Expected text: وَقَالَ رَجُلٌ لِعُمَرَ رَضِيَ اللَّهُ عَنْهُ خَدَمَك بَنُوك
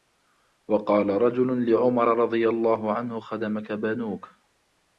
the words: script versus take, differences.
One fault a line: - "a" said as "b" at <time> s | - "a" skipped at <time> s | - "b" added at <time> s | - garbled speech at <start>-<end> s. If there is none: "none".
none